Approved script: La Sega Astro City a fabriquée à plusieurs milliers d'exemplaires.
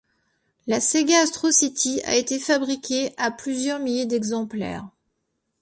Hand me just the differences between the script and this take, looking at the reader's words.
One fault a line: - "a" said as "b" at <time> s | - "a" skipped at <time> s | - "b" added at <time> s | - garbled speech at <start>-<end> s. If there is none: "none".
- "été" added at 2.1 s